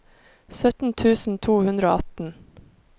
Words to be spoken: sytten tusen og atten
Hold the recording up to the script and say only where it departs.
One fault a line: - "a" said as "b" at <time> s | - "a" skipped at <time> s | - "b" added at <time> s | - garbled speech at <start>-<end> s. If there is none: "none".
- "to hundre" added at 1.5 s